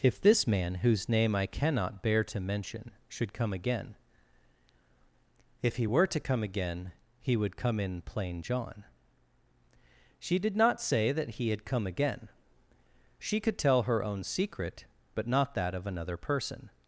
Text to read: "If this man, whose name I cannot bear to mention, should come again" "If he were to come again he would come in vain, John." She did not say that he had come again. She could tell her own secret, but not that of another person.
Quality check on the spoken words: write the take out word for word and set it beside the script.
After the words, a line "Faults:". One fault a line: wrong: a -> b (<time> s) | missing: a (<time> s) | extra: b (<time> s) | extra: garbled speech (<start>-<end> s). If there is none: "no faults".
"If this man, whose name I cannot bear to mention, should come again" "If he were to come again he would come in plain, John." She did not say that he had come again. She could tell her own secret, but not that of another person.
Faults:
wrong: vain -> plain (8.0 s)